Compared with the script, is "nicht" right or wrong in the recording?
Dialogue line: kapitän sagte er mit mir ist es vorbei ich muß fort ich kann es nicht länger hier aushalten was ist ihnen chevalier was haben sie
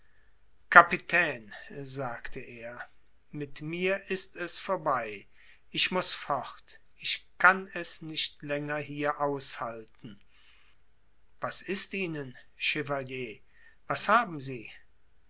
right